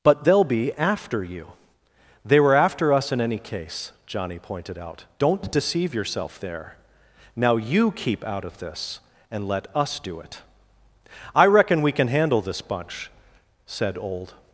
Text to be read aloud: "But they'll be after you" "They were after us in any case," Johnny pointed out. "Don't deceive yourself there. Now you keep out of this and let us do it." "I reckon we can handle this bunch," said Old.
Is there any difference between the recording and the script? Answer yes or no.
no